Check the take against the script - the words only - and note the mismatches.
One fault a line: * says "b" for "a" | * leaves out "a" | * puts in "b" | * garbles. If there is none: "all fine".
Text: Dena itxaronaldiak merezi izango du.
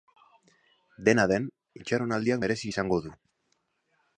* puts in "den"